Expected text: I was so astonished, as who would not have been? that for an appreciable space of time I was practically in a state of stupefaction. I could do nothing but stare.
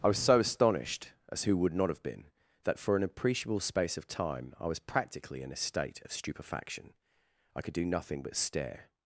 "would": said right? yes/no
yes